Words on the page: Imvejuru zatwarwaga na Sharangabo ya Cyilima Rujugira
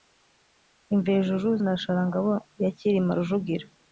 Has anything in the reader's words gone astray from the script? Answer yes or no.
yes